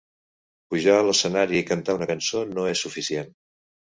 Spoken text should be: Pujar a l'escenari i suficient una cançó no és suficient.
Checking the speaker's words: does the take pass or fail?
fail